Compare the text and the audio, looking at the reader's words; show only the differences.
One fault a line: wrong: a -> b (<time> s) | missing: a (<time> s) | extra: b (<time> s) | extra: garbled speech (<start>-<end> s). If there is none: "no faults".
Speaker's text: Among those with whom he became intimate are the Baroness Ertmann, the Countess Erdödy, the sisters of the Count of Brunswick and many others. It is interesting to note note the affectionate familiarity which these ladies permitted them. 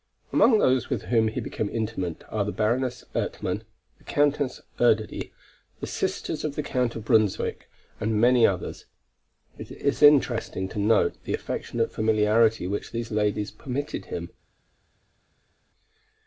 missing: note (11.2 s)
wrong: them -> him (14.0 s)